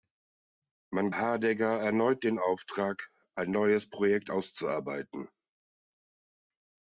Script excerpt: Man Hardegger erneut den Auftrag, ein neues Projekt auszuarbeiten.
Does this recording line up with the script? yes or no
yes